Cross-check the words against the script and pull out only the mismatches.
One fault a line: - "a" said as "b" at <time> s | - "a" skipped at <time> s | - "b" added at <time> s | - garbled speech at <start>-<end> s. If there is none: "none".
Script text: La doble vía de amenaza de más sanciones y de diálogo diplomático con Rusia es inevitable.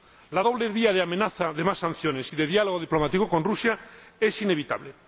none